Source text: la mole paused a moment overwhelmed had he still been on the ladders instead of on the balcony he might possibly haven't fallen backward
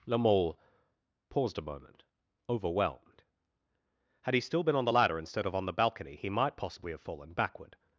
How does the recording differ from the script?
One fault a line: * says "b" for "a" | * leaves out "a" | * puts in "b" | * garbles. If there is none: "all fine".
* says "ladder" for "ladders"
* says "have" for "haven't"